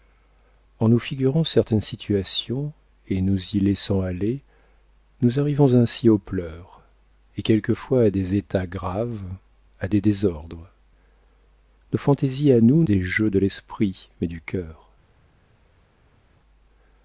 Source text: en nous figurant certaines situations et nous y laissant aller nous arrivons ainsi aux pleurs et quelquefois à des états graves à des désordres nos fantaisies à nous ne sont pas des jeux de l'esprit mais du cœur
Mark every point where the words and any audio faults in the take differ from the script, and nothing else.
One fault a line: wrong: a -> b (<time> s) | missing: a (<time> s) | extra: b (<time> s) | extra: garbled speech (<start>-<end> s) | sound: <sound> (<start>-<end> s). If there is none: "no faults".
missing: ne sont pas (12.8 s)